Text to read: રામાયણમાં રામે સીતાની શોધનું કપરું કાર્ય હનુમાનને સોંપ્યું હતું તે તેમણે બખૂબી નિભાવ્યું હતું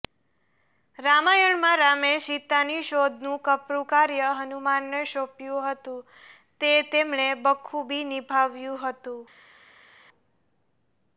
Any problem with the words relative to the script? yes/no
no